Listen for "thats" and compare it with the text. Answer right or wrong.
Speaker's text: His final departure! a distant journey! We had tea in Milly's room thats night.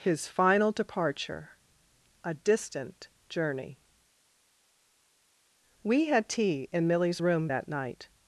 wrong